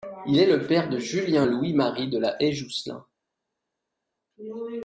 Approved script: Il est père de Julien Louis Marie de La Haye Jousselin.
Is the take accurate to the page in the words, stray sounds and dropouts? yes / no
no